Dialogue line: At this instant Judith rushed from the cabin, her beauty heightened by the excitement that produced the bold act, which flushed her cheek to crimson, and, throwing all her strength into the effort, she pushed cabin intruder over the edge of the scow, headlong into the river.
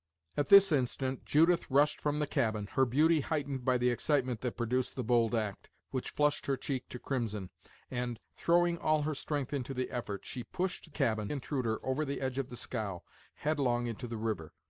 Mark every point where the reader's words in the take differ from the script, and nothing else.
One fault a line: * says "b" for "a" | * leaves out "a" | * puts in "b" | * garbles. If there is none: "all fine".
all fine